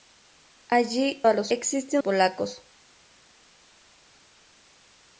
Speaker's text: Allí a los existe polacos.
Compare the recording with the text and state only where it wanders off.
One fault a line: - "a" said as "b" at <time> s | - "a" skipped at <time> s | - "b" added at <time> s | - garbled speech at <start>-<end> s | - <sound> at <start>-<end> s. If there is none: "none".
none